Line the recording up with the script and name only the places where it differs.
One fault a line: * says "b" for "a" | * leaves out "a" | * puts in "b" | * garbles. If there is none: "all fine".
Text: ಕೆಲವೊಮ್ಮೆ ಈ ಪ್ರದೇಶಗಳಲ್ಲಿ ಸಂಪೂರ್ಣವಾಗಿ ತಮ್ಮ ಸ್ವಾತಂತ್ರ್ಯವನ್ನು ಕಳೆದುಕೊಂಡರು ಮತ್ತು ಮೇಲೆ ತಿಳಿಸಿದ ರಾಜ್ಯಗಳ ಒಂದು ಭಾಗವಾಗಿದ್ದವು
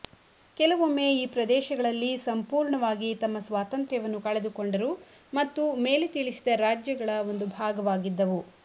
all fine